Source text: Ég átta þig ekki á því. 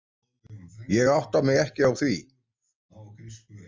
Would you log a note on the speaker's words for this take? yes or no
yes